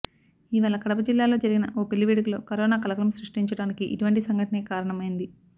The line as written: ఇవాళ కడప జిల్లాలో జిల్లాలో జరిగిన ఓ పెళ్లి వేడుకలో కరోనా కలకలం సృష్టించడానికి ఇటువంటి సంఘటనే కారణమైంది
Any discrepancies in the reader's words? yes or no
yes